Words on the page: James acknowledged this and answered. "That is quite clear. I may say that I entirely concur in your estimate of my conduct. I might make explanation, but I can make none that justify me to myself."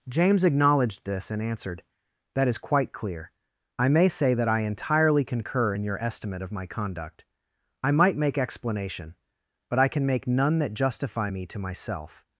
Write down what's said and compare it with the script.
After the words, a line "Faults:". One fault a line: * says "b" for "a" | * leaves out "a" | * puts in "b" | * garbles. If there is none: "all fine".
James acknowledged this and answered. "That is quite clear. I may say that I entirely concur in your estimate of my conduct. I might make explanation, but I can make none that justify me to myself."
Faults:
all fine